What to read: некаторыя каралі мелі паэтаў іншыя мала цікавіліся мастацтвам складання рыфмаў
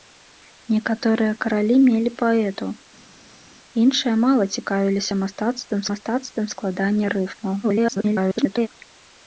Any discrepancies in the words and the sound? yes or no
yes